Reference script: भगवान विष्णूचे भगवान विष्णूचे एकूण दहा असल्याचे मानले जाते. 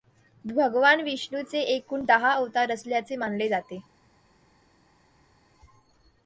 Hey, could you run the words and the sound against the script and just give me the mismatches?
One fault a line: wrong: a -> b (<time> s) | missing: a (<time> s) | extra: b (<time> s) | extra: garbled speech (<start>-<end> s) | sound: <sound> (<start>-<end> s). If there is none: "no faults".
missing: भगवान विष्णूचे (1.6 s)
extra: अवतार (2.3 s)